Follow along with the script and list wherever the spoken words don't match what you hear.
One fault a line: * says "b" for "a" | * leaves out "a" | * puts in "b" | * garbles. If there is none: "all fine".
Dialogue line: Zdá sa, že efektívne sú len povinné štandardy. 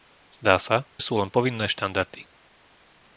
* leaves out "že efektívne"